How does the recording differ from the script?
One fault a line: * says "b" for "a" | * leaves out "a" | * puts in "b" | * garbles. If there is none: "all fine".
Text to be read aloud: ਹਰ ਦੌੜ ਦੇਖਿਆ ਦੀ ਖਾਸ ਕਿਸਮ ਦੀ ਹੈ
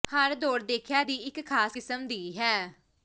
* puts in "ਇੱਕ"